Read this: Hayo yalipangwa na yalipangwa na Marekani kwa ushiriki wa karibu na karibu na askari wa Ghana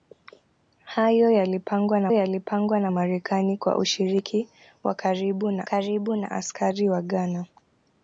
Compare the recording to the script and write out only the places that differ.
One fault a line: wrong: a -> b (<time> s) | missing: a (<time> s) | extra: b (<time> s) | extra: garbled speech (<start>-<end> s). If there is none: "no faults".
no faults